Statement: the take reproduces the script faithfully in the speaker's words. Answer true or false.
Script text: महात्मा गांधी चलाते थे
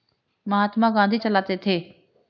true